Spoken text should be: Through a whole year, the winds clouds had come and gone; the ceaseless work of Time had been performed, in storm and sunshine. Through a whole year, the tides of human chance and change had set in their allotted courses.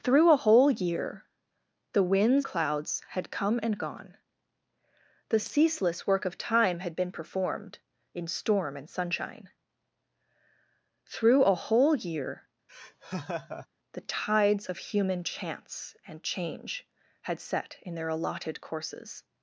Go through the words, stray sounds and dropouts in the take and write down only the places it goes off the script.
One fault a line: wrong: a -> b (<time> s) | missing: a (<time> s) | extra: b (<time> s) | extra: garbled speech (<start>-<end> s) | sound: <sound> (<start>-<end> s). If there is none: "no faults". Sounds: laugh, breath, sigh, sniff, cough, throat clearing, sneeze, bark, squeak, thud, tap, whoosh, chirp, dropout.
sound: laugh (12.7-13.7 s)